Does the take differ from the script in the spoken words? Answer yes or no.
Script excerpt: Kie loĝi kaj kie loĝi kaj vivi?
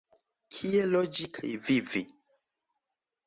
yes